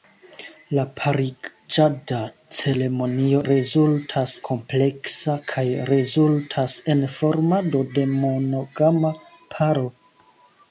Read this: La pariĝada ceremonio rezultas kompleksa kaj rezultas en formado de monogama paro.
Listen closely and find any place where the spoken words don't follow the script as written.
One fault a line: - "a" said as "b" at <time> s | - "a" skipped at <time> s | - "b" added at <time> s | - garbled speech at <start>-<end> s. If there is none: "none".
none